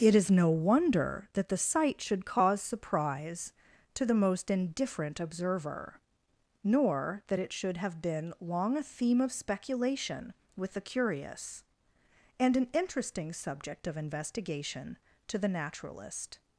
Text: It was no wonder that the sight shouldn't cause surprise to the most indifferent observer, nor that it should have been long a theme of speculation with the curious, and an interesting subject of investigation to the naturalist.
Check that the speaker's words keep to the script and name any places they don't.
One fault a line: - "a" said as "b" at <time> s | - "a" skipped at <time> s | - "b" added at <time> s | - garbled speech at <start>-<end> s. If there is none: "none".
- "was" said as "is" at 0.1 s
- "shouldn't" said as "should" at 2.0 s